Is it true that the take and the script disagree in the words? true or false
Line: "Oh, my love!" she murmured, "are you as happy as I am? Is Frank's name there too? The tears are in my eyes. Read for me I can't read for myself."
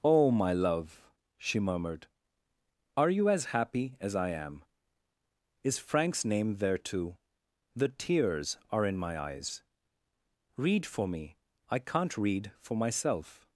false